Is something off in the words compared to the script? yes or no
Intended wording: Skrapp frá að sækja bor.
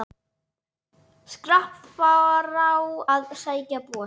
no